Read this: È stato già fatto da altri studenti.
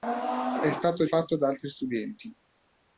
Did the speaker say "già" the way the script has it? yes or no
no